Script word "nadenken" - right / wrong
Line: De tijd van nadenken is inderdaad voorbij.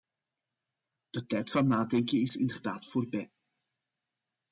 right